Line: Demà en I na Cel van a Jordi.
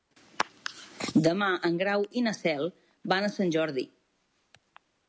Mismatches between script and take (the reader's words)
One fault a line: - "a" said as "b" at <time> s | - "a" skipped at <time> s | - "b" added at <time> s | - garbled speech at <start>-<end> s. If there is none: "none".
- "Grau" added at 1.8 s
- "Sant" added at 3.4 s